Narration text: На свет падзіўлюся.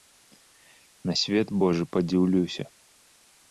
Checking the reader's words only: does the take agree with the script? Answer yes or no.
no